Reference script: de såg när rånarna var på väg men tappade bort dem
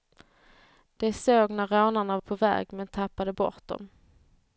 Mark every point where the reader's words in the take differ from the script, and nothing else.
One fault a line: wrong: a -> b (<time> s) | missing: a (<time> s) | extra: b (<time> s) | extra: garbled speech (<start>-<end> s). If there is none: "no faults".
missing: var (2.2 s)